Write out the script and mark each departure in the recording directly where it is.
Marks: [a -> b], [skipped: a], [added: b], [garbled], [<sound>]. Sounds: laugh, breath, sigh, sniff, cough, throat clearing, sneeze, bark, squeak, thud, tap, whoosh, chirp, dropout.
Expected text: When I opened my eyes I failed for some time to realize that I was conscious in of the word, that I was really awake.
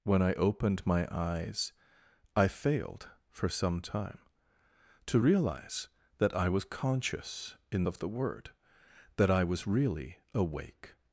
When I opened my eyes I failed for some time to realize that I was conscious in of the word, that I was really awake.